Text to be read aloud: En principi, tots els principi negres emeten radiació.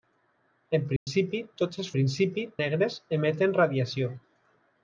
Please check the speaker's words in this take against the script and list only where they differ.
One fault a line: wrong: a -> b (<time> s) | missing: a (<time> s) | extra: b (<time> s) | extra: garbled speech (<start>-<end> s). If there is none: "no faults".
no faults